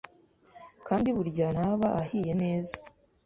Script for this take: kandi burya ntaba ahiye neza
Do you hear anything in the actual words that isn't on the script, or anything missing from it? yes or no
no